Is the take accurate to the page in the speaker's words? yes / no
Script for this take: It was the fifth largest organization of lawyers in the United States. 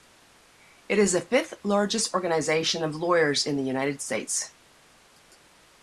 no